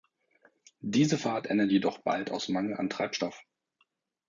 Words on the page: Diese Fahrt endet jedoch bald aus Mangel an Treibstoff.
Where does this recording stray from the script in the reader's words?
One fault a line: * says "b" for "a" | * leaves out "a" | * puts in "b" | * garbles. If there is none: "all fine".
all fine